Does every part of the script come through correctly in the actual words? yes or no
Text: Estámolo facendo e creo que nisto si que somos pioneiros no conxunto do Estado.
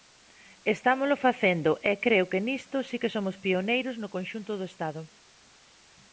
yes